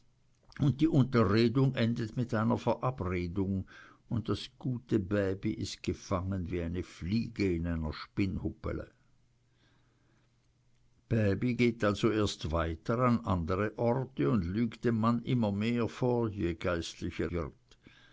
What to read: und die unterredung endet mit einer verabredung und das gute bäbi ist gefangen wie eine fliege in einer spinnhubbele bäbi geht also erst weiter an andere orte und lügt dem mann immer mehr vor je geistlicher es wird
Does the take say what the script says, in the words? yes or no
no